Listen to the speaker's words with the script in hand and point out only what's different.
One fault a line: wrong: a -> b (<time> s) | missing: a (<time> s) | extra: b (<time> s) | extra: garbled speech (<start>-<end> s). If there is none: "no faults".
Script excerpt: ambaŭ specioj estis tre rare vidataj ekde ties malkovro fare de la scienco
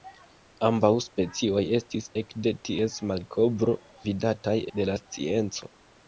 missing: tre rare vidataj (2.1 s)
wrong: fare -> vidataj (4.1 s)